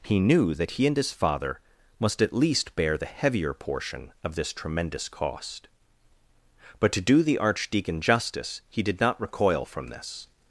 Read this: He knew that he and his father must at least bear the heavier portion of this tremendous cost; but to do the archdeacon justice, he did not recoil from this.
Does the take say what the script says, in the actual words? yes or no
yes